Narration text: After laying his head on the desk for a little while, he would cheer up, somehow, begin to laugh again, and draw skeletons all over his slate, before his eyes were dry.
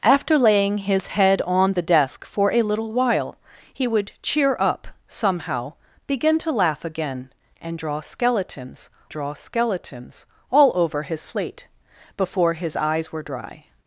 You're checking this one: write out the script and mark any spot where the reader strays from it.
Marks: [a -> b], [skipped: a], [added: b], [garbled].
After laying his head on the desk for a little while, he would cheer up, somehow, begin to laugh again, and draw skeletons [added: draw skeletons] all over his slate, before his eyes were dry.